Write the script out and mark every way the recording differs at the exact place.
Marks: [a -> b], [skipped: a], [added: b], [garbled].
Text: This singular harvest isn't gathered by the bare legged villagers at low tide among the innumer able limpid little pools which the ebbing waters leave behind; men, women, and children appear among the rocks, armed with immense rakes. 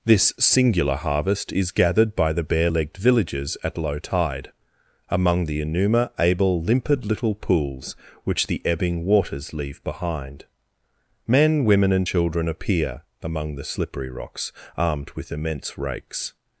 This singular harvest [isn't -> is] gathered by the bare legged villagers at low tide among the innumer able limpid little pools which the ebbing waters leave behind; men, women, and children appear among the [added: slippery] rocks, armed with immense rakes.